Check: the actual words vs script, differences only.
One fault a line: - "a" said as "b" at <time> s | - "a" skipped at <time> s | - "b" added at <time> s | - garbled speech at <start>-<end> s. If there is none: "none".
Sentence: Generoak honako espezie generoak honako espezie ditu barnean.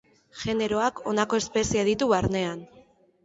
- "generoak honako espezie" skipped at 1.8 s